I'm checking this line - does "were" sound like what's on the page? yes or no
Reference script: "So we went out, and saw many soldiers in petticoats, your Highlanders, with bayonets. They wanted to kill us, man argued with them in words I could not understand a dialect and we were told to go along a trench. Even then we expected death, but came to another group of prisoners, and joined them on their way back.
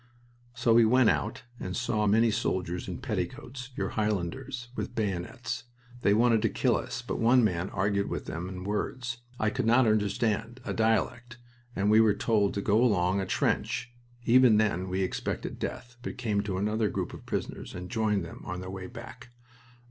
yes